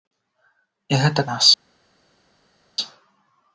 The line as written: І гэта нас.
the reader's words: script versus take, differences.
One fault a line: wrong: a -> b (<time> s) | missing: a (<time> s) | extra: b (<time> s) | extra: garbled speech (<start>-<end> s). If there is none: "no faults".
no faults